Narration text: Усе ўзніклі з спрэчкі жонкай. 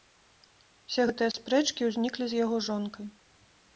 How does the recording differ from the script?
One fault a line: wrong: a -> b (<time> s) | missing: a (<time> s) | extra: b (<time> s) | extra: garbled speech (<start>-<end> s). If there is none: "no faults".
extra: гэтыя спрэчкі (1.1 s)
wrong: спрэчкі -> яго (2.4 s)